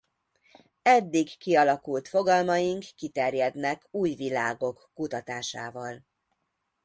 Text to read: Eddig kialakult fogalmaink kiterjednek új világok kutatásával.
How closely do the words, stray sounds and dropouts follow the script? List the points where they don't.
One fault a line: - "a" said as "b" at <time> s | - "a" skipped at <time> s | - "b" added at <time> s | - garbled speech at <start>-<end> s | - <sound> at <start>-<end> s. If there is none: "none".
none